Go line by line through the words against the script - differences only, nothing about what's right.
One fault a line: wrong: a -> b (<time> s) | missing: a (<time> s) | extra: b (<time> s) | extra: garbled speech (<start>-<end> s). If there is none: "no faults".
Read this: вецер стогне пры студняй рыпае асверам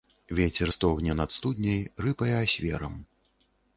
wrong: пры -> над (1.2 s)